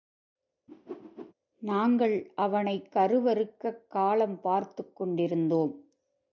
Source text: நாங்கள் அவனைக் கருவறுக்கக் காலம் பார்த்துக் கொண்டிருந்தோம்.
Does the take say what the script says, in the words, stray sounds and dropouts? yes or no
no